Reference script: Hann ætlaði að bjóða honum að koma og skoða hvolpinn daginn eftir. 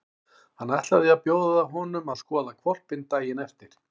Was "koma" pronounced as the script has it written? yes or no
no